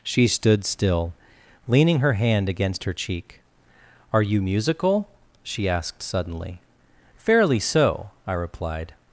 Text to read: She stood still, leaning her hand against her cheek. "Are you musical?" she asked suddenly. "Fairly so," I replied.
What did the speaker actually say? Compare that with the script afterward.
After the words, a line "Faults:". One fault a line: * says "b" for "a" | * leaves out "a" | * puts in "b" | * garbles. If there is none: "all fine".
She stood still, leaning her hand against her cheek. "Are you musical?" she asked suddenly. "Fairly so," I replied.
Faults:
all fine